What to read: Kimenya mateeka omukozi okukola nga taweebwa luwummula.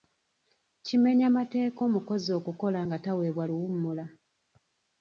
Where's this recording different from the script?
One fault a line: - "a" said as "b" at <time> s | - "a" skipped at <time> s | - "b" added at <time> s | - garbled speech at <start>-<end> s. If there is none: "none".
none